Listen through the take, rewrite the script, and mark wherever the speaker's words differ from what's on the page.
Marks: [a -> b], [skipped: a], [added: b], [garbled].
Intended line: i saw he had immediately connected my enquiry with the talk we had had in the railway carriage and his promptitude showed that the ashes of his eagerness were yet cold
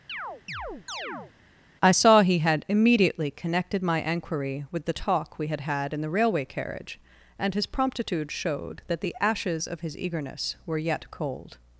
i saw he had immediately connected my enquiry with the talk we had had in the railway carriage and his promptitude showed that the ashes of his eagerness were yet cold